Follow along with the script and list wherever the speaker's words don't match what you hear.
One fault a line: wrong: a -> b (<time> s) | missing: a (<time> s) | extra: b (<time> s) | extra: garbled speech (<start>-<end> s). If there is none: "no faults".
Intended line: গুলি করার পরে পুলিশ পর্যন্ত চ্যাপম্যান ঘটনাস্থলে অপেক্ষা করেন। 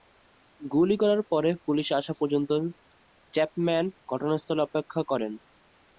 extra: আসা (1.9 s)